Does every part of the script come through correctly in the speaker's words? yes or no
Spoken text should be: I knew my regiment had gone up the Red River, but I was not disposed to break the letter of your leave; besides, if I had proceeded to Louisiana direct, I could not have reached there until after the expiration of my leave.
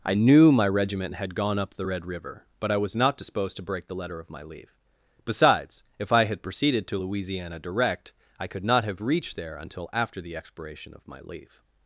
no